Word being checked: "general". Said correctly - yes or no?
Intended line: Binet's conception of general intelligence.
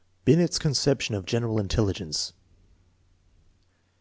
yes